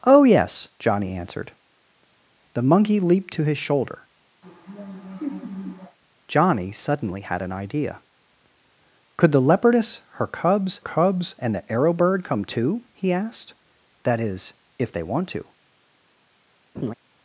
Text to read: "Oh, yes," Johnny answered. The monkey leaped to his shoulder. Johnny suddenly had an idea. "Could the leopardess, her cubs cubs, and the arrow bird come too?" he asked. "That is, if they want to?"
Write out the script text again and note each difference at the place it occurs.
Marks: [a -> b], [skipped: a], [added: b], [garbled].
"Oh, yes," Johnny answered. The monkey leaped to his shoulder. Johnny suddenly had an idea. "Could the leopardess, her cubs cubs, and the arrow bird come too?" he asked. "That is, if they want to?"